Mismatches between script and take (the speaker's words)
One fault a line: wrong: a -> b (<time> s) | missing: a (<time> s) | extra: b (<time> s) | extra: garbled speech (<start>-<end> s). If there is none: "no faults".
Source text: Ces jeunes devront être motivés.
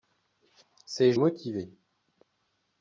missing: jeunes devront être (1.1 s)